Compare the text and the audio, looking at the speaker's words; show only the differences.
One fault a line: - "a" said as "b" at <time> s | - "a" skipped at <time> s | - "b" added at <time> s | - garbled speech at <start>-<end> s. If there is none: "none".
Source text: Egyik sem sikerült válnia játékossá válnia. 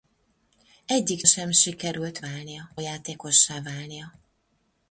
none